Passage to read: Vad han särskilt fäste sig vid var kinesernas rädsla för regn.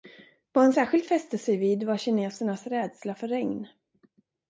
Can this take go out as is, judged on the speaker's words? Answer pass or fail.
pass